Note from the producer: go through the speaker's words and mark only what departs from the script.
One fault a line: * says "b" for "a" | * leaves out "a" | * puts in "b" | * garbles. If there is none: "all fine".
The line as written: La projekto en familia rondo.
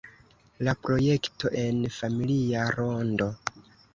all fine